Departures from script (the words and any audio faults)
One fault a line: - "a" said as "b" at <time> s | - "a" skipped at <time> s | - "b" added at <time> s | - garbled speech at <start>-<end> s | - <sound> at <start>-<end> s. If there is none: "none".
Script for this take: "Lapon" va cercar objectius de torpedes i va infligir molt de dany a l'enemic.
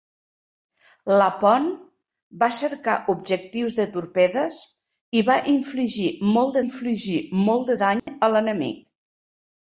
- "infligir molt" added at 6.7 s
- dropout at 8.0-8.1 s